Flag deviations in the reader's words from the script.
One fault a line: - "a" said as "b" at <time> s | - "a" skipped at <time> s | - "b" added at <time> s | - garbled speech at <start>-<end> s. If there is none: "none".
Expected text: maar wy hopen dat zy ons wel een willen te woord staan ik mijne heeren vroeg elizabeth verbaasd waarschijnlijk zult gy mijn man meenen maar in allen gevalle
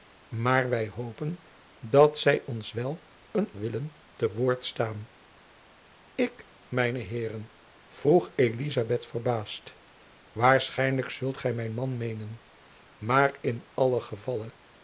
none